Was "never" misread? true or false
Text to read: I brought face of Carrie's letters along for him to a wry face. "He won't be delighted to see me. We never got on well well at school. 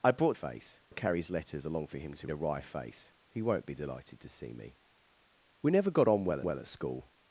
false